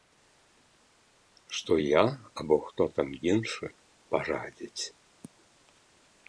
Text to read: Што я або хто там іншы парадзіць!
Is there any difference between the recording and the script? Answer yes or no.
no